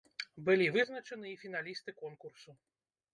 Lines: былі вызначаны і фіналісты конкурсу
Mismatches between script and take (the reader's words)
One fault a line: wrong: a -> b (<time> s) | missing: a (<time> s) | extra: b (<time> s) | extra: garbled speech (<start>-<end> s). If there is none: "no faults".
no faults